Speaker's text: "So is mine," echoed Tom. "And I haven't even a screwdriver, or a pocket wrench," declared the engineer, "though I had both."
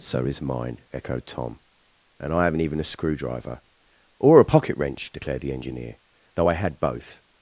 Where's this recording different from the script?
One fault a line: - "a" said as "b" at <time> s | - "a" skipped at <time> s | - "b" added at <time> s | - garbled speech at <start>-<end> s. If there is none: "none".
none